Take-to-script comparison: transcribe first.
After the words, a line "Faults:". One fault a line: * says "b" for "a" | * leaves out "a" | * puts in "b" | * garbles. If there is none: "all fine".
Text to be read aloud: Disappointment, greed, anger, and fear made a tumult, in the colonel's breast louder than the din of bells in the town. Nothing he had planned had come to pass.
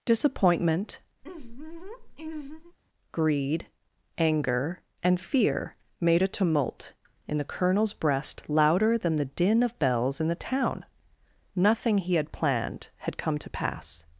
Disappointment, greed, anger, and fear made a tumult, in the colonel's breast louder than the din of bells in the town. Nothing he had planned had come to pass.
Faults:
all fine